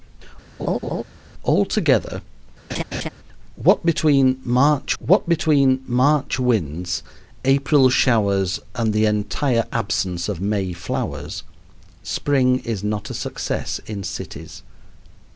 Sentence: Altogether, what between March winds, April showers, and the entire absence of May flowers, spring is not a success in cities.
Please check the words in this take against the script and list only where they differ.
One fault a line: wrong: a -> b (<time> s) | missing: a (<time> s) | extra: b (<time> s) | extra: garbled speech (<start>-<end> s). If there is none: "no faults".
extra: what between March (5.0 s)